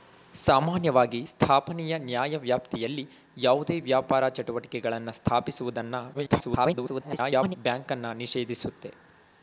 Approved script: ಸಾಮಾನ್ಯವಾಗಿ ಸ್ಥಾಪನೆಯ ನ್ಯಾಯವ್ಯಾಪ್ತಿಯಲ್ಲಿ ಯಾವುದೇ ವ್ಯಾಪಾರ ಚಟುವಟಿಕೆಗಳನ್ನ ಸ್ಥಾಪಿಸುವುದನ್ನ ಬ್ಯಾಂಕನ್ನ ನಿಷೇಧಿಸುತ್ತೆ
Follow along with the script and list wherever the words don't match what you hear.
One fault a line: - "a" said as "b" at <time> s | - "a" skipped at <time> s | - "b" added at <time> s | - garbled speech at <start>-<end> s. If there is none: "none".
- garbled speech at 6.1-7.6 s